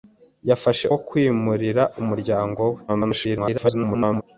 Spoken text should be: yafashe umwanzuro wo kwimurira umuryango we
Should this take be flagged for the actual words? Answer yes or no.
yes